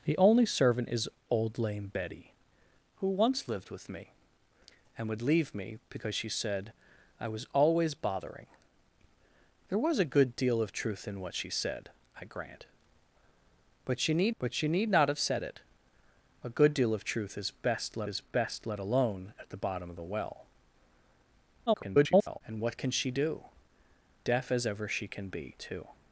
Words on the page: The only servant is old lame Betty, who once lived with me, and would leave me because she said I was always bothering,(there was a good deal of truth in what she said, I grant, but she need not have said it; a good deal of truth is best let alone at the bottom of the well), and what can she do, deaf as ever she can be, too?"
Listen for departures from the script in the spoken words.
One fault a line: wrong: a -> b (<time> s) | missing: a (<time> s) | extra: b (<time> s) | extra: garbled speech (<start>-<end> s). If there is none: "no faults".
extra: but she need (14.4 s)
extra: is best let (18.1 s)
extra: garbled speech (21.7-22.4 s)